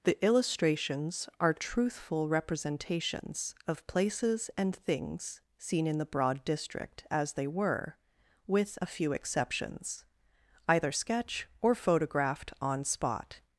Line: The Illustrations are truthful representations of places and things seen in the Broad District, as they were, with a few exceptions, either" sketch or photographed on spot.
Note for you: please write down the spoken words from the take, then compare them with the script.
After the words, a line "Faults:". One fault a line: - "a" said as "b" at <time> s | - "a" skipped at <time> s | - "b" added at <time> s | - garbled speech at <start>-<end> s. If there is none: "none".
The Illustrations are truthful representations of places and things seen in the Broad District, as they were, with a few exceptions, either" sketch or photographed on spot.
Faults:
none